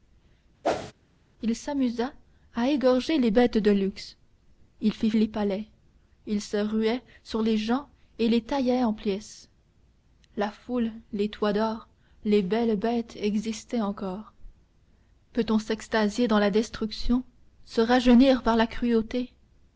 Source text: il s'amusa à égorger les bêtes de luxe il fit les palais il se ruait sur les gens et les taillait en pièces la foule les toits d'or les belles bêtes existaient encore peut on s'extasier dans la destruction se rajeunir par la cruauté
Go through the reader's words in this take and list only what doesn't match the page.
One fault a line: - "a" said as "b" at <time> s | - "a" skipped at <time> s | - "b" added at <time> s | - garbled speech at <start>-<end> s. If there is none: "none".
none